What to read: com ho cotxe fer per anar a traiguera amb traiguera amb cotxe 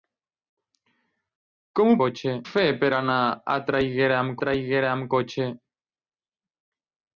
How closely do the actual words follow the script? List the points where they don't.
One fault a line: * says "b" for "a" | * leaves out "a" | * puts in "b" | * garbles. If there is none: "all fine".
all fine